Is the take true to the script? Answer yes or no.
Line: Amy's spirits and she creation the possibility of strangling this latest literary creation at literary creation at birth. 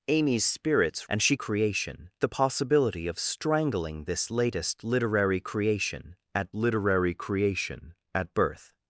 yes